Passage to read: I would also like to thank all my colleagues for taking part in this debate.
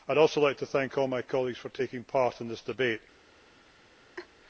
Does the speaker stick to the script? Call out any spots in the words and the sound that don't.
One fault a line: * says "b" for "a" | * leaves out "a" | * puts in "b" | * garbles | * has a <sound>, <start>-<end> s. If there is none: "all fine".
* has a laugh, 4.2-4.3 s